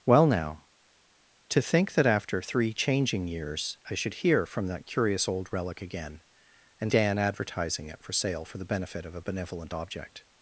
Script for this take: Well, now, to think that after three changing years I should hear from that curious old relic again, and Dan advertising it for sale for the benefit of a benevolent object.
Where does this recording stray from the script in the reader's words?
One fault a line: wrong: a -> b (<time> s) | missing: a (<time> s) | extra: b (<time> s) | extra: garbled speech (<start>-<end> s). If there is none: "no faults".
no faults